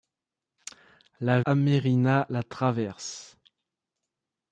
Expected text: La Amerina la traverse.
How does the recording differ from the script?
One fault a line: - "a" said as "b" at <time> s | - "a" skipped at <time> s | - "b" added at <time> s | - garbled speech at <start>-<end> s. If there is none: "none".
none